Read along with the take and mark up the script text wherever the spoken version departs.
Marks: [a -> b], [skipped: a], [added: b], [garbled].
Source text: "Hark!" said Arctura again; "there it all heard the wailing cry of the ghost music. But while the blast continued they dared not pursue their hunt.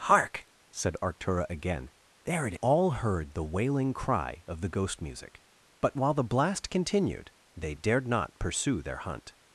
"Hark!" said Arctura again; "there it all heard the wailing cry of the ghost music. But while the blast continued they dared not pursue their hunt.